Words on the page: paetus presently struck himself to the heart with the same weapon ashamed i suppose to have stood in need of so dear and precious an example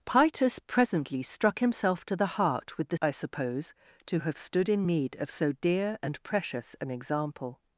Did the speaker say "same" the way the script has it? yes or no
no